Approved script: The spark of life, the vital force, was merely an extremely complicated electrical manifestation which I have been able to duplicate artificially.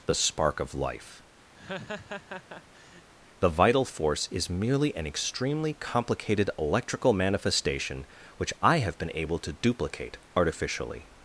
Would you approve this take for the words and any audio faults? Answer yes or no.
no